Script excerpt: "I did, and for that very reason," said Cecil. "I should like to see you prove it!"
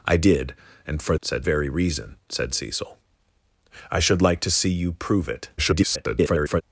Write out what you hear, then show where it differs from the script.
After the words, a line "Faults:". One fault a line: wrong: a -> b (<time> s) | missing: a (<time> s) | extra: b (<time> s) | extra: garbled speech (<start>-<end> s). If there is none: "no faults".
"I did, and for said very reason," said Cecil. "I should like to see you prove it!" [garbled]
Faults:
wrong: that -> said (1.2 s)
extra: garbled speech (5.6-6.6 s)